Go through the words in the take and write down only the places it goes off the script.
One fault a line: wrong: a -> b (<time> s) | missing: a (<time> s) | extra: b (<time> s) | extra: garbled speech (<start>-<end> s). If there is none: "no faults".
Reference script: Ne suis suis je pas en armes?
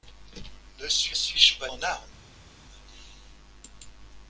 no faults